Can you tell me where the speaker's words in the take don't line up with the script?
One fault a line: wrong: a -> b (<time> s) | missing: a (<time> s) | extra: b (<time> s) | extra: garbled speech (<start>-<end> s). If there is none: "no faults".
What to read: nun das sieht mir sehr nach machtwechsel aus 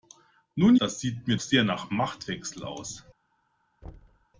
no faults